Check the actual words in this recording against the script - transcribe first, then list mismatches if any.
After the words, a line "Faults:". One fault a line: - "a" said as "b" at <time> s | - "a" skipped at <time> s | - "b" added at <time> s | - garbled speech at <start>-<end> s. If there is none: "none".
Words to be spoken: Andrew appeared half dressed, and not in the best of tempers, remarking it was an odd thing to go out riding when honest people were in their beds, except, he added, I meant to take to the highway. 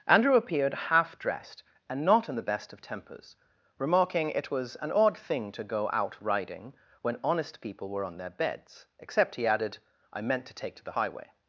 Andrew appeared half dressed, and not in the best of tempers, remarking it was an odd thing to go out riding when honest people were on their beds, except, he added, I meant to take to the highway.
Faults:
- "in" said as "on" at 8.0 s